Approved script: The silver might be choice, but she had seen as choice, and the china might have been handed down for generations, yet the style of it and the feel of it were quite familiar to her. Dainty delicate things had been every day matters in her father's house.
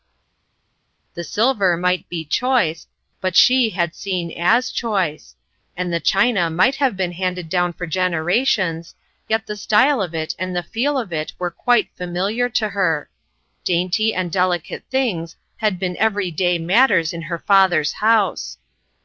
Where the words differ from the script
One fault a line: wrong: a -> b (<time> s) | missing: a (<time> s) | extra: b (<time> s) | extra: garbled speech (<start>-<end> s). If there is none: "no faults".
extra: and (14.1 s)